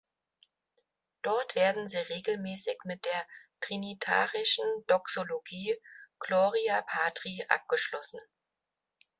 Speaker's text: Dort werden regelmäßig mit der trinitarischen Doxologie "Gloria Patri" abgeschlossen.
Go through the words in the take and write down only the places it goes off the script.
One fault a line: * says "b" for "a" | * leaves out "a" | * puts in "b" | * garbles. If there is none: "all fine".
* puts in "sie"